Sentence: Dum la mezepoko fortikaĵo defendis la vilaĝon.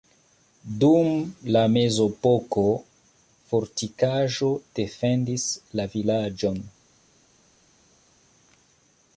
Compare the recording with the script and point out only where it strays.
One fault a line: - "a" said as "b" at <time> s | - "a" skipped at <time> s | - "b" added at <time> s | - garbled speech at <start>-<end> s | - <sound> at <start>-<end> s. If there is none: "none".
none